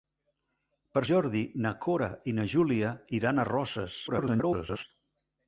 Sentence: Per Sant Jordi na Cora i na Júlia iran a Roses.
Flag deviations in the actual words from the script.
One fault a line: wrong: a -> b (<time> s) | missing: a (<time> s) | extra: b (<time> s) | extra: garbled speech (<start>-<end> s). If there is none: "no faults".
missing: Sant (1.0 s)
extra: garbled speech (4.1-4.8 s)